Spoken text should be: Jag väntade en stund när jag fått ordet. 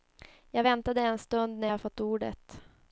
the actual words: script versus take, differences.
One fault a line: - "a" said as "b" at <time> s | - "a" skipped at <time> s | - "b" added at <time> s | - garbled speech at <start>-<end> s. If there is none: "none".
none